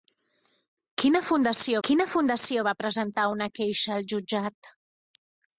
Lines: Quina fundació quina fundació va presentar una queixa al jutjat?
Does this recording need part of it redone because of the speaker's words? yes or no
no